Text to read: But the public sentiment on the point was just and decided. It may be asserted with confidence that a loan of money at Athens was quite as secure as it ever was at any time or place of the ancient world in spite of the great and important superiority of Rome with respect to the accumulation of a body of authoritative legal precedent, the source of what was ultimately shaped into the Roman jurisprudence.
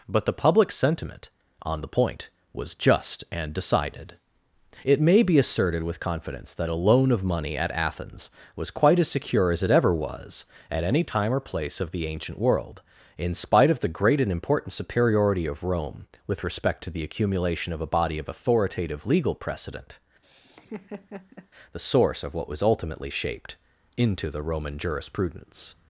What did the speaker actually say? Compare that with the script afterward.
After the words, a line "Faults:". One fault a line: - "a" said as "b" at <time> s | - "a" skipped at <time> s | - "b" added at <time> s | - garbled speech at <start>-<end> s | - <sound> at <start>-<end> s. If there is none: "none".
But the public sentiment on the point was just and decided. It may be asserted with confidence that a loan of money at Athens was quite as secure as it ever was at any time or place of the ancient world in spite of the great and important superiority of Rome with respect to the accumulation of a body of authoritative legal precedent, the source of what was ultimately shaped into the Roman jurisprudence.
Faults:
- laugh at 20.2-21.5 s